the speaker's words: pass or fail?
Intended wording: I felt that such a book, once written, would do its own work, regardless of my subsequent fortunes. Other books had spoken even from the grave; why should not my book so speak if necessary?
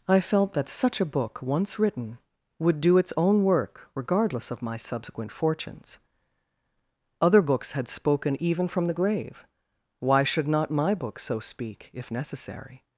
pass